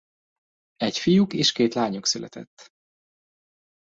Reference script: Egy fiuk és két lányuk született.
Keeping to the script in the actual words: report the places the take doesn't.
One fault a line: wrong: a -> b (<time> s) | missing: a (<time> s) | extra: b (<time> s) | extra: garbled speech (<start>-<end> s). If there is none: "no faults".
no faults